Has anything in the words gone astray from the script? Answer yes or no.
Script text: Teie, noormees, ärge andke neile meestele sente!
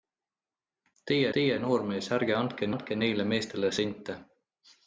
yes